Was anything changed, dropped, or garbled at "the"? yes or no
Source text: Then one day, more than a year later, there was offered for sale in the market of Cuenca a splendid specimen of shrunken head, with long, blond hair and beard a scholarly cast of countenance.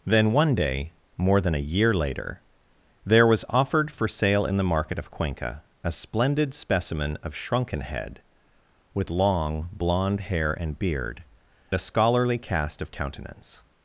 no